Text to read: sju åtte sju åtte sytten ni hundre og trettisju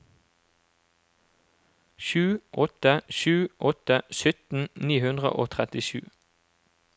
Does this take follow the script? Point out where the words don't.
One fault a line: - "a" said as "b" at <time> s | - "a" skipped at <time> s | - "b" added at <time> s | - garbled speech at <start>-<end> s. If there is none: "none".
none